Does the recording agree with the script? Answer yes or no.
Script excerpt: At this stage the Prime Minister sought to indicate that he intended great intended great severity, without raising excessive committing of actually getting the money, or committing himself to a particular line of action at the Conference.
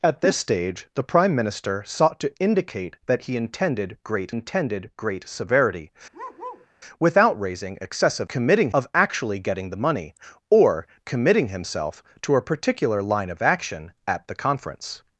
yes